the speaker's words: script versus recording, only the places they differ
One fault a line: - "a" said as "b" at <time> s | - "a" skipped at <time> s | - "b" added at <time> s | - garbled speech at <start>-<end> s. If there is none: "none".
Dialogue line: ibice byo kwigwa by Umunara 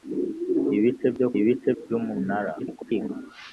- "kwigwa" said as "ibice" at 1.4 s
- garbled speech at 2.6-3.1 s